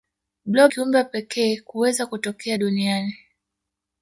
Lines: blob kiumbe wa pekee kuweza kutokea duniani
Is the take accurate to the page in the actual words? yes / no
yes